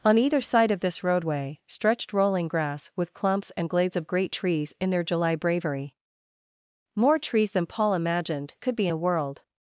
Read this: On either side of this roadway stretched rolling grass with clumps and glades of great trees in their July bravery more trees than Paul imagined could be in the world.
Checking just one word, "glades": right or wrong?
right